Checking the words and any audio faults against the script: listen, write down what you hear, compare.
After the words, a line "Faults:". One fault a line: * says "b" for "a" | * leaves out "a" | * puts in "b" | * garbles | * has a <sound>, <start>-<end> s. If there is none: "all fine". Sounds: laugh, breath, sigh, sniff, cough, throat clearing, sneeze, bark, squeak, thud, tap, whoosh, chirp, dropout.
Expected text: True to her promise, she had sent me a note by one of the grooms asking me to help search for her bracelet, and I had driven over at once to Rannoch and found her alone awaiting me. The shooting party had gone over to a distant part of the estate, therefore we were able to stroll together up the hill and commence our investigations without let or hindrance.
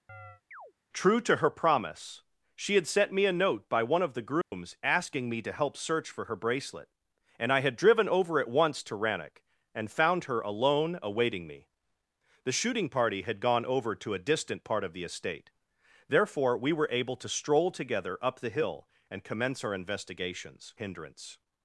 True to her promise, she had sent me a note by one of the grooms asking me to help search for her bracelet, and I had driven over at once to Rannoch and found her alone awaiting me. The shooting party had gone over to a distant part of the estate, therefore we were able to stroll together up the hill and commence our investigations hindrance.
Faults:
* has a chirp, 0.1-0.7 s
* has a dropout, 4.4-4.5 s
* leaves out "without let or"